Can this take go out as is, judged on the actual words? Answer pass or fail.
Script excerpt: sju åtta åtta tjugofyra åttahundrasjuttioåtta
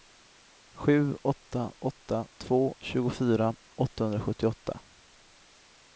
fail